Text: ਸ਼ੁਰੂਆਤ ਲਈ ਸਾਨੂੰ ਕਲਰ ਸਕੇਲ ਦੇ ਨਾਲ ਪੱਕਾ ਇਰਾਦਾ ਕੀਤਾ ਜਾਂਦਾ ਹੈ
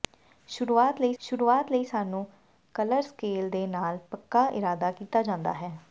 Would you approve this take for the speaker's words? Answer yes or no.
no